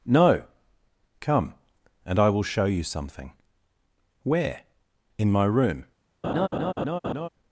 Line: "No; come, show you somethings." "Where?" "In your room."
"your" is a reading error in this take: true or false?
true